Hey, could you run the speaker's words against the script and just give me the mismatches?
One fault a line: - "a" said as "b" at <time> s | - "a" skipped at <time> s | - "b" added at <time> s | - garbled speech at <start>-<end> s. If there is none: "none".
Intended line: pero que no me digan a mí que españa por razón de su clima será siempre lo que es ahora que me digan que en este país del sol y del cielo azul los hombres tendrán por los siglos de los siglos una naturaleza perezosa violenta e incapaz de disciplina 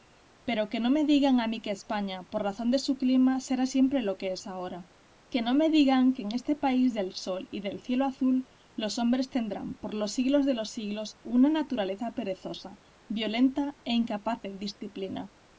- "no" added at 5.4 s